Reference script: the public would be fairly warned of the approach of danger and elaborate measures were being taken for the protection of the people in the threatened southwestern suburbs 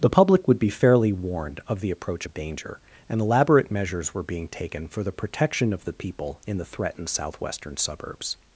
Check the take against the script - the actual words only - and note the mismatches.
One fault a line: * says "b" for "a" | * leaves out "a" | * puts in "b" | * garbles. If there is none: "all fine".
all fine